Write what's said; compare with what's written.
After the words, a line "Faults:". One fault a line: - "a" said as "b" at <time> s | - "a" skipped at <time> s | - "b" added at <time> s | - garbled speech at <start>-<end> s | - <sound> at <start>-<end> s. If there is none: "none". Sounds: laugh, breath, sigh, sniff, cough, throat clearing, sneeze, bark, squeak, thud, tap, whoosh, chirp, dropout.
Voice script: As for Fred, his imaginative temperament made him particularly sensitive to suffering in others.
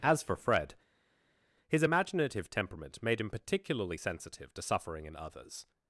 As for Fred, his imaginative temperament made him particularly sensitive to suffering in others.
Faults:
none